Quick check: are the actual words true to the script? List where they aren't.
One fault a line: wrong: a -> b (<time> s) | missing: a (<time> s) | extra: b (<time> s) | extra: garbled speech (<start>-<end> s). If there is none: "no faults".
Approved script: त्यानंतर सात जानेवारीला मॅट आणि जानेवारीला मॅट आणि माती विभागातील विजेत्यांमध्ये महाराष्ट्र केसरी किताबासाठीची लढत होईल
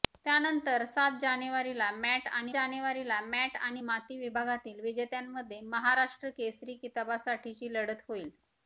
no faults